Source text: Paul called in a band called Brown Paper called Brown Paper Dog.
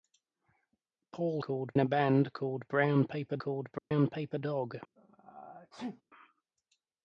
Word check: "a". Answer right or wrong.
right